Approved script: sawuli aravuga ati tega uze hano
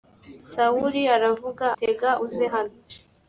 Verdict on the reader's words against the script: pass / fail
fail